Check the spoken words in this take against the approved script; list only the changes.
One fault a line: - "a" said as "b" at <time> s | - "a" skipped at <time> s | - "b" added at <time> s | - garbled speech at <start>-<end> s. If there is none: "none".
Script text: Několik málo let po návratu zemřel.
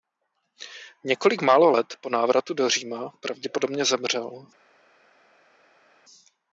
- "do Říma pravděpodobně" added at 2.5 s